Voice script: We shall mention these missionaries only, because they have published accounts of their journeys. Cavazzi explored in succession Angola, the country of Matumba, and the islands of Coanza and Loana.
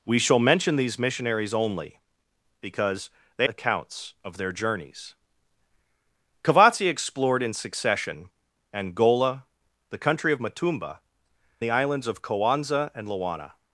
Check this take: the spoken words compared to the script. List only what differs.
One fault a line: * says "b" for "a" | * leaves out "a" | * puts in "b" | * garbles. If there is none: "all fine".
* leaves out "have published"
* leaves out "and"